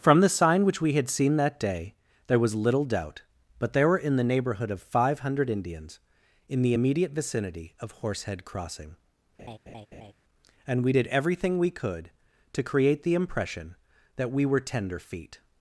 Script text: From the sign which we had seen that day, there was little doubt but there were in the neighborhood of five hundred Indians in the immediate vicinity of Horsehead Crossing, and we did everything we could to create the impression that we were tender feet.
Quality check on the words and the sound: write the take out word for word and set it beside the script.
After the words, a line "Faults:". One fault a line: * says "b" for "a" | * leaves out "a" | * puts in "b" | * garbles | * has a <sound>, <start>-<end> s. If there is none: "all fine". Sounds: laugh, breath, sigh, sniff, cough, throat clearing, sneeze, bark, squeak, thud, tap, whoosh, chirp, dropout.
From the sign which we had seen that day, there was little doubt but there were in the neighborhood of five hundred Indians in the immediate vicinity of Horsehead Crossing, and we did everything we could to create the impression that we were tender feet.
Faults:
* has a laugh, 9.4-10.1 s